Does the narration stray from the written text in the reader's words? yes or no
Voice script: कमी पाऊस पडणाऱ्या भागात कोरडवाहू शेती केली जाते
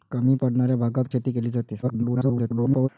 yes